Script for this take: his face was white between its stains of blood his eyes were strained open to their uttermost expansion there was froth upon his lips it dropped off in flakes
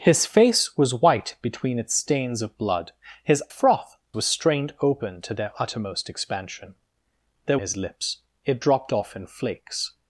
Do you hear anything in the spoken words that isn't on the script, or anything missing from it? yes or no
yes